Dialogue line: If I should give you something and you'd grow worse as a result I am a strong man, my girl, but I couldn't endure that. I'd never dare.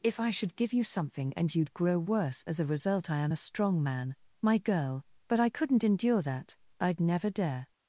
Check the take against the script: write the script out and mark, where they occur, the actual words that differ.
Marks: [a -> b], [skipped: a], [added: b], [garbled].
If I should give you something and you'd grow worse as a result I am a strong man, my girl, but I couldn't endure that. I'd never dare.